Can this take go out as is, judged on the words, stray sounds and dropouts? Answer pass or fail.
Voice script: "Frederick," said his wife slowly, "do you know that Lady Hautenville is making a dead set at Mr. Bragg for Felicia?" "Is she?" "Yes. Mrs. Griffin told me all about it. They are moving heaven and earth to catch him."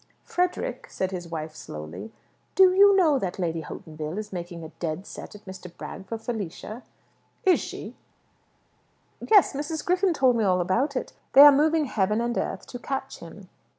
pass